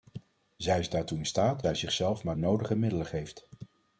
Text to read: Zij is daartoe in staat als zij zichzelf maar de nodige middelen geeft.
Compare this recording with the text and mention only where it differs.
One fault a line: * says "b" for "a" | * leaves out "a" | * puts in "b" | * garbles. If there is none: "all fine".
* leaves out "als"
* leaves out "de"